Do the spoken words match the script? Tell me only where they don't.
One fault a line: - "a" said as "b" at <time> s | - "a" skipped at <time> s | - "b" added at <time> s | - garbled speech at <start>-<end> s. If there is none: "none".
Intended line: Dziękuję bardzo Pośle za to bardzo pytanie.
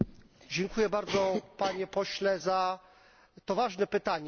- "Panie" added at 1.6 s
- "bardzo" said as "ważne" at 3.5 s